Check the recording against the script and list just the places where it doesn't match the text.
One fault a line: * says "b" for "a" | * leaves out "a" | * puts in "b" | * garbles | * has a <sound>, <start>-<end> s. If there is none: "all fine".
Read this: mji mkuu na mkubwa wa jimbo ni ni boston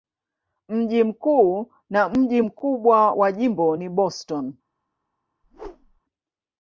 * puts in "mji"
* leaves out "ni"
* has a whoosh, 5.4-6.0 s